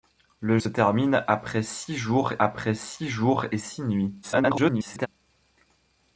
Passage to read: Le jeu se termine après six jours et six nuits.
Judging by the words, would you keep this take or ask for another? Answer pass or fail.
fail